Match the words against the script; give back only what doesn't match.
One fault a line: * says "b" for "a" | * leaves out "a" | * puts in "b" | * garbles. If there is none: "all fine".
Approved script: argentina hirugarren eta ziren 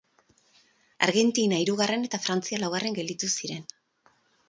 * puts in "frantzia laugarren gelditu"